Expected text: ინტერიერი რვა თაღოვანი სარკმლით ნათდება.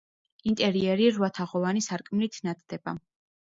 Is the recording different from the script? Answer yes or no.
no